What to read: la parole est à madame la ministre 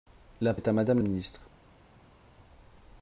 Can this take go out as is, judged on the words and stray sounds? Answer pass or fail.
fail